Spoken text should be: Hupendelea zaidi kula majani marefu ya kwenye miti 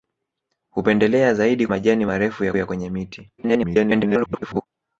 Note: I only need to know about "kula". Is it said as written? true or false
false